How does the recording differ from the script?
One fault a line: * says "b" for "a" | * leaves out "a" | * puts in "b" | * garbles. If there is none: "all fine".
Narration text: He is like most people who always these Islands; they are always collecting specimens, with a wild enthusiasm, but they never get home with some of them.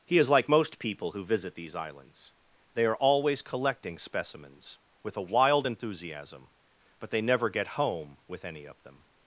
* says "visit" for "always"
* says "any" for "some"